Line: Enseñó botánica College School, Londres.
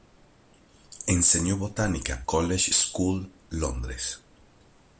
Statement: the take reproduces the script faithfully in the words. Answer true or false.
true